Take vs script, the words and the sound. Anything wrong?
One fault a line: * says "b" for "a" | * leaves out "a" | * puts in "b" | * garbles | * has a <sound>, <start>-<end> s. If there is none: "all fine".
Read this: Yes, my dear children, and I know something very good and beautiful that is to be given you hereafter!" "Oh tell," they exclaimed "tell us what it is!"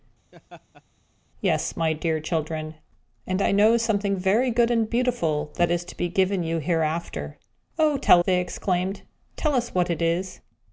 * has a laugh, 0.3-0.8 s